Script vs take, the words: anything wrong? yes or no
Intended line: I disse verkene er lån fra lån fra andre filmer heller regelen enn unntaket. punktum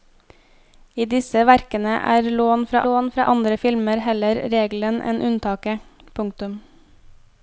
no